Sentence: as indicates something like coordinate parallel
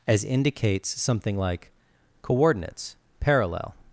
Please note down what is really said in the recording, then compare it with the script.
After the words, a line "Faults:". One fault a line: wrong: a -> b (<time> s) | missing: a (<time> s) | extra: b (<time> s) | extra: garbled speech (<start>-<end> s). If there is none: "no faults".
as indicates something like coordinates parallel
Faults:
wrong: coordinate -> coordinates (2.2 s)